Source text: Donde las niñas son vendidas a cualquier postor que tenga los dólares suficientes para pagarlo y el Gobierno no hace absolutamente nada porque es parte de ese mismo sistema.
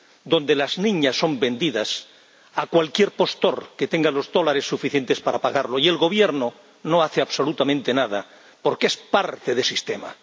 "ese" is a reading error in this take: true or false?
true